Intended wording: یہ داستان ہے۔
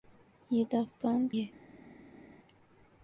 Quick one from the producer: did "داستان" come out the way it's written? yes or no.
yes